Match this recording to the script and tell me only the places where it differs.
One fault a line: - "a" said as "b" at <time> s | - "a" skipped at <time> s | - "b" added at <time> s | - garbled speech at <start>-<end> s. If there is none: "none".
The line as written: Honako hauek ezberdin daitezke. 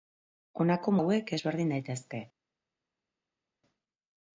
none